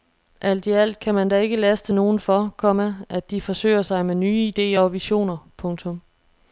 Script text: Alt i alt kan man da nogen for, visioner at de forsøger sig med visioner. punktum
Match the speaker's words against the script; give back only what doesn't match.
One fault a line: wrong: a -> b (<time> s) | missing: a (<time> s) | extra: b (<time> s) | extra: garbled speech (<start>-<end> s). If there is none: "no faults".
extra: ikke laste (1.4 s)
wrong: visioner -> komma (2.6 s)
extra: nye idéer og (4.2 s)